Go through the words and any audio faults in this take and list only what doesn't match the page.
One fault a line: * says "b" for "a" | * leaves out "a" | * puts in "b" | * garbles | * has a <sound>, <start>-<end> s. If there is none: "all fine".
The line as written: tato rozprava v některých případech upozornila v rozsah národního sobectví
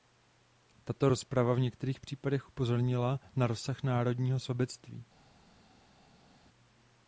* says "na" for "v"